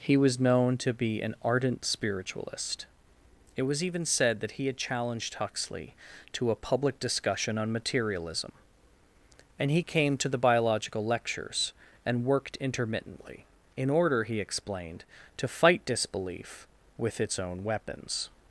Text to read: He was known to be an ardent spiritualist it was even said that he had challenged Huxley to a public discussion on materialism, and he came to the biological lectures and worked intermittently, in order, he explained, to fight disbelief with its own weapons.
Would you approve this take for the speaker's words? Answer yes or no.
yes